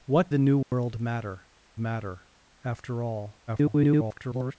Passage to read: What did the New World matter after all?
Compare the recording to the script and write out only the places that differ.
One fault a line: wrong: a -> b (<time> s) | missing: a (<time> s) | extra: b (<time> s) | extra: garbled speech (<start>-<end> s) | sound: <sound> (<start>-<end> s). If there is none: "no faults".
missing: did (0.3 s)
sound: dropout (0.6-0.7 s)
extra: matter (1.8 s)
extra: garbled speech (3.5-4.6 s)